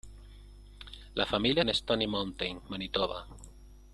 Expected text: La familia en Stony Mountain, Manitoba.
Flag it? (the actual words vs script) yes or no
no